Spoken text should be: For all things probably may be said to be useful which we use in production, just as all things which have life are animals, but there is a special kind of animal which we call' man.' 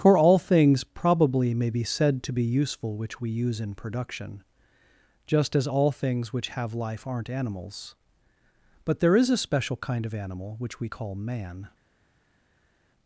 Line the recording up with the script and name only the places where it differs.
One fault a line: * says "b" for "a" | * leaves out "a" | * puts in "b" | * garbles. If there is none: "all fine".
* says "aren't" for "are"